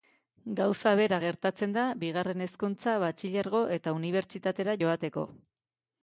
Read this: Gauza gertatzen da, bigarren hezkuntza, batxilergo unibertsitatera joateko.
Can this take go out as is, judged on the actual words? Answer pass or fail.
fail